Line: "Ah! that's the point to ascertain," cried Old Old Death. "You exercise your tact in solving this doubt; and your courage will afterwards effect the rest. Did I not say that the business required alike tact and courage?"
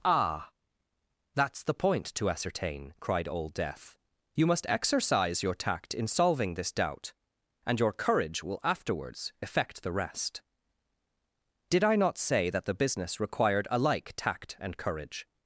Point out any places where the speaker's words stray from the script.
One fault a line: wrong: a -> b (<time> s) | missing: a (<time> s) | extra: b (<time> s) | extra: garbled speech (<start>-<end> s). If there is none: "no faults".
missing: Old (3.5 s)
extra: must (4.5 s)